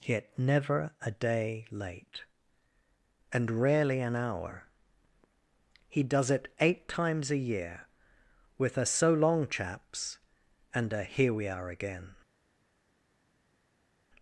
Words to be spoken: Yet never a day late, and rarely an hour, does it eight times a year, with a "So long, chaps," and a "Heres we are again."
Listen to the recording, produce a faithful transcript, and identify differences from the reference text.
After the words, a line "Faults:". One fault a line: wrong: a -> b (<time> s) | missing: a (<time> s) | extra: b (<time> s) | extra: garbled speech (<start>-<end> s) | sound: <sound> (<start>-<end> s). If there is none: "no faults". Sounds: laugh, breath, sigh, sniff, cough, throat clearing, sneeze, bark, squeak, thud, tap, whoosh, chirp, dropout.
Yet never a day late, and rarely an hour, he does it eight times a year, with a "So long, chaps," and a "Here we are again."
Faults:
extra: he (5.9 s)
wrong: Heres -> Here (11.0 s)